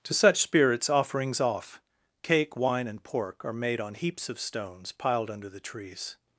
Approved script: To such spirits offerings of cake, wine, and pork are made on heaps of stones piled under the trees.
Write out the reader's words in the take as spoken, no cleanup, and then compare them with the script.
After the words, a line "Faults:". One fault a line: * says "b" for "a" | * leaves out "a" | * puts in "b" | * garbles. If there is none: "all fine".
To such spirits offerings off cake, wine, and pork are made on heaps of stones piled under the trees.
Faults:
* says "off" for "of"